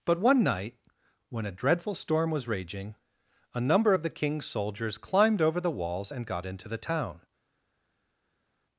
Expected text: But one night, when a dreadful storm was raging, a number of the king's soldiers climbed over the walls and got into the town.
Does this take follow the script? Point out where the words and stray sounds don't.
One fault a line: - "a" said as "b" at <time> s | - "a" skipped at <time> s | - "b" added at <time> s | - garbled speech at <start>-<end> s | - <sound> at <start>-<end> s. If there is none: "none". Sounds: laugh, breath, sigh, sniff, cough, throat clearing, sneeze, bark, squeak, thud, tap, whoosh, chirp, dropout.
none